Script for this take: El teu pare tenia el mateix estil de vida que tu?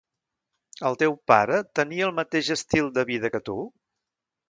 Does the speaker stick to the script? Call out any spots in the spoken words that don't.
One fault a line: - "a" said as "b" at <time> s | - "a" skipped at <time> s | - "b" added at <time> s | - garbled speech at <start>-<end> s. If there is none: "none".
none